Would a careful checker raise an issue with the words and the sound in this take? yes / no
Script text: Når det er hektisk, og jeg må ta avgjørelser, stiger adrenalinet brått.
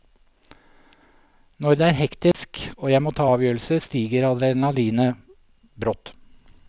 yes